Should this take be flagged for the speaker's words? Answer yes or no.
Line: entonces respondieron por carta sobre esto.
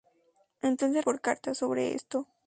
yes